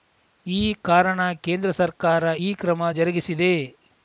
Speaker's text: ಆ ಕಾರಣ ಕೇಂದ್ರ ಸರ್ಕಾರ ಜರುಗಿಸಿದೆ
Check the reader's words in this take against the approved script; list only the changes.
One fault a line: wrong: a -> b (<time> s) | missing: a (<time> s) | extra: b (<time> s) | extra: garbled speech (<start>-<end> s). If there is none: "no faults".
wrong: ಆ -> ಈ (0.5 s)
extra: ಈ ಕ್ರಮ (2.4 s)